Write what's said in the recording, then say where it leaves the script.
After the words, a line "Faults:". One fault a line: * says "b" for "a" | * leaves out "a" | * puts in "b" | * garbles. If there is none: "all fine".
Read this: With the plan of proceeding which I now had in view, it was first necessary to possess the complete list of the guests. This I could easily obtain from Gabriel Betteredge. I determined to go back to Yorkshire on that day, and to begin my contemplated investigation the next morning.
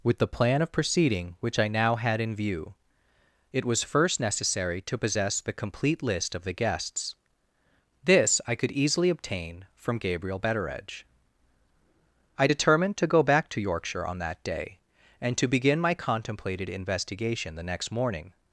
With the plan of proceeding which I now had in view, it was first necessary to possess the complete list of the guests. This I could easily obtain from Gabriel Betteredge. I determined to go back to Yorkshire on that day, and to begin my contemplated investigation the next morning.
Faults:
all fine